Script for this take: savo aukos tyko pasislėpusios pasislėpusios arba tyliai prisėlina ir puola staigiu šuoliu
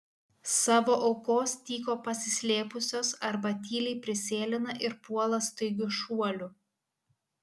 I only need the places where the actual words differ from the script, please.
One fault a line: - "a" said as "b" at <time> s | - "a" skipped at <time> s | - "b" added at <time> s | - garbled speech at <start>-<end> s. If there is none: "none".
- "pasislėpusios" skipped at 3.1 s